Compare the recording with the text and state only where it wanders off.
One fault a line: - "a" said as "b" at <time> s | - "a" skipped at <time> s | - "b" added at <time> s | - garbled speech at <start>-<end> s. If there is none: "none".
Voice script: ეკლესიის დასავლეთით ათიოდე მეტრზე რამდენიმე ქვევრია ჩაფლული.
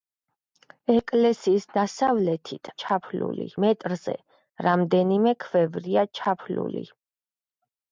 - "ათიოდე" said as "ჩაფლული" at 2.9 s